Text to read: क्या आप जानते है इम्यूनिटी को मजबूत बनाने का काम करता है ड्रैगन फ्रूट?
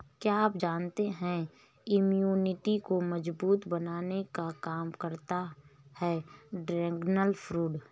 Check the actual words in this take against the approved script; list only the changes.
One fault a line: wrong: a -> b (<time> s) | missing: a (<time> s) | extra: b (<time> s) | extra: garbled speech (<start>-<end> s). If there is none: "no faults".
no faults